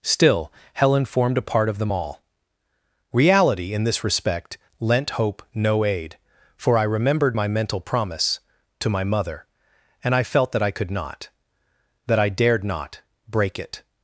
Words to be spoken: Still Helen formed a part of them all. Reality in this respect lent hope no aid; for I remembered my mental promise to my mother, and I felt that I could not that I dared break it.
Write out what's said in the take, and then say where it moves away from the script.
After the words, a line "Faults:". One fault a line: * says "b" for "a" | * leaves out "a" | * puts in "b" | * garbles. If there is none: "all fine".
Still Helen formed a part of them all. Reality in this respect lent hope no aid; for I remembered my mental promise to my mother, and I felt that I could not that I dared not break it.
Faults:
* puts in "not"